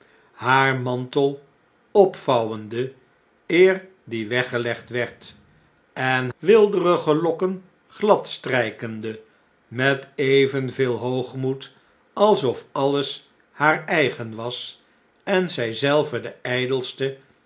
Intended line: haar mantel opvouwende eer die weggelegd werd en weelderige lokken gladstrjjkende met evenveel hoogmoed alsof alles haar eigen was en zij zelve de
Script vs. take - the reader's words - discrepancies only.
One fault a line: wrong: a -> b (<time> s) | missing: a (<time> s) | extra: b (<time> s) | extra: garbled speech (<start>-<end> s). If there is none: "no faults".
no faults